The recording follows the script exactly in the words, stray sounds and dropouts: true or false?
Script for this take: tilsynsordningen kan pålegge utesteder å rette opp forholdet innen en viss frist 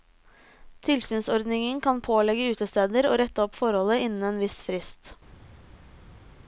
true